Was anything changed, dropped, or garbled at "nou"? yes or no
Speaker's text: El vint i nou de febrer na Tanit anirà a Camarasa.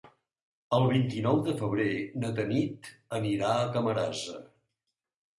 no